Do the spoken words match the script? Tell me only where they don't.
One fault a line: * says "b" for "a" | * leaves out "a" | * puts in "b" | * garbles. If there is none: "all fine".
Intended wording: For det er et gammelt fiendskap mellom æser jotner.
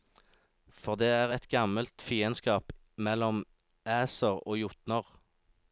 * puts in "og"